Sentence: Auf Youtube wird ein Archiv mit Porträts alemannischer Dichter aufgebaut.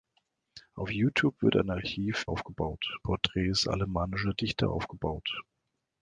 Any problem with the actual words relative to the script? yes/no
yes